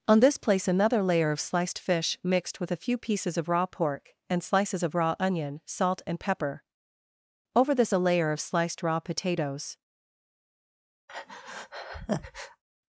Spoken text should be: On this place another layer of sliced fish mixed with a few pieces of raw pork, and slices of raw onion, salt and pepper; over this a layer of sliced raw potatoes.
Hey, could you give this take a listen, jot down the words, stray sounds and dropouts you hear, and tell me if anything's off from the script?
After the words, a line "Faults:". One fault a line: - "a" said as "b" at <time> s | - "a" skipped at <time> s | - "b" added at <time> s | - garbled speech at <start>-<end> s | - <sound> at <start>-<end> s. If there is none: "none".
On this place another layer of sliced fish mixed with a few pieces of raw pork, and slices of raw onion, salt and pepper; over this a layer of sliced raw potatoes.
Faults:
- breath at 11.1-12.6 s